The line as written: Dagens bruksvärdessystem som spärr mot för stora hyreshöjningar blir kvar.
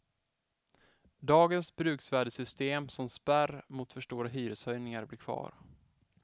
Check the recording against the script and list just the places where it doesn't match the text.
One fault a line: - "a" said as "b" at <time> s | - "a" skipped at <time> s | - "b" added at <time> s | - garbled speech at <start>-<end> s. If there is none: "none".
none